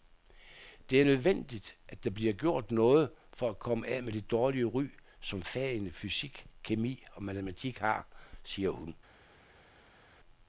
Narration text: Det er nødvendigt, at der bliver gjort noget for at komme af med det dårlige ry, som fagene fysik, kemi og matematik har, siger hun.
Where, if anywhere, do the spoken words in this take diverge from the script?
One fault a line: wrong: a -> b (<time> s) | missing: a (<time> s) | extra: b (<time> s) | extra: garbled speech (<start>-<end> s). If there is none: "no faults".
no faults